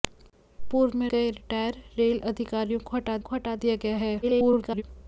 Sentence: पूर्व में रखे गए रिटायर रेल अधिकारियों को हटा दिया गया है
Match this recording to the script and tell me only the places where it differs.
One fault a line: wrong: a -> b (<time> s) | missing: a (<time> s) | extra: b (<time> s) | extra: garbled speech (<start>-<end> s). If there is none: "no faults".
missing: रखे (1.1 s)
extra: को हटा (3.2 s)
extra: garbled speech (4.2-4.8 s)